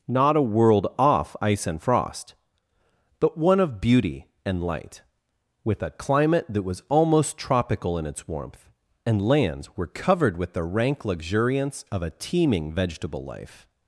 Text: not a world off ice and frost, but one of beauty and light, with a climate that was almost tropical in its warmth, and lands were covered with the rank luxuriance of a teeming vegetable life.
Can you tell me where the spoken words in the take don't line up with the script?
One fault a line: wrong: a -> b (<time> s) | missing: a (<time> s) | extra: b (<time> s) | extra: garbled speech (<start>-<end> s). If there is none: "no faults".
no faults